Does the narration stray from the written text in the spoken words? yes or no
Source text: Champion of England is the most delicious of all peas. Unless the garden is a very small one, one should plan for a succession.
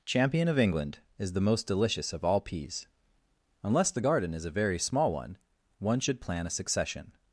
yes